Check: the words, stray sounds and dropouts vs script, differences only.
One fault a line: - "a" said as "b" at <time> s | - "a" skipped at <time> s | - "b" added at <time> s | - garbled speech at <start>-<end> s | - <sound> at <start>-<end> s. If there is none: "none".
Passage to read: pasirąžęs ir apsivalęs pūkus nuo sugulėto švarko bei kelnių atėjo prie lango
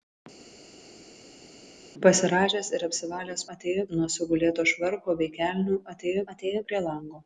- "pūkus" said as "atėjo" at 3.6 s
- "atėjo" added at 6.3 s